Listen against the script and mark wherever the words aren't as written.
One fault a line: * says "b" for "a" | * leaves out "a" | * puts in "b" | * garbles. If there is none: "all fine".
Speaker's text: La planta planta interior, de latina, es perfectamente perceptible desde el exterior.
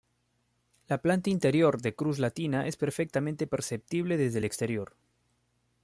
* leaves out "planta"
* puts in "cruz"